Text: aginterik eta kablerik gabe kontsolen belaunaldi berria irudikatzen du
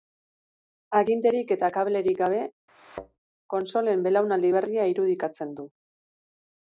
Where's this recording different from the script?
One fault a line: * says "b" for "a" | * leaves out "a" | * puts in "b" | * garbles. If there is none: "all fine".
all fine